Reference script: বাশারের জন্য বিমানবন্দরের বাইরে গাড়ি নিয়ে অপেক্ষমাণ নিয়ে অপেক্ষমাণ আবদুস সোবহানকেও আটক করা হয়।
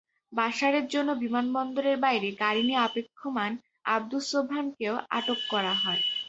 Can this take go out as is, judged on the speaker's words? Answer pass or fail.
fail